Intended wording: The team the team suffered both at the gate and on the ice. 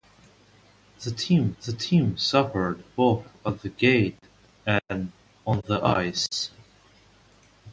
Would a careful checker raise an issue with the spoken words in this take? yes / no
no